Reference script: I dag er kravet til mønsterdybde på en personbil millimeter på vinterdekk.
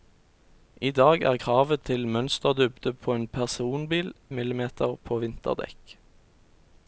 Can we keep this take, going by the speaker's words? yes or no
yes